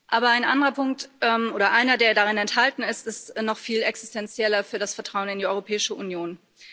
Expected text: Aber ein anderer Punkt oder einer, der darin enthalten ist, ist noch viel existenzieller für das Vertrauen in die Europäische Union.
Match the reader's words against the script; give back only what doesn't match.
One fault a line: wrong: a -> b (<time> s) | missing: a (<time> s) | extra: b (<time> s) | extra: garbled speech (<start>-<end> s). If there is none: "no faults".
no faults